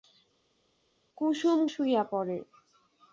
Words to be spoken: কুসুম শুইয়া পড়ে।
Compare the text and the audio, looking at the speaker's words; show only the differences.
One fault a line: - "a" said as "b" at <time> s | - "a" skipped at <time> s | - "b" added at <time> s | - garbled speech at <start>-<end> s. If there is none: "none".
none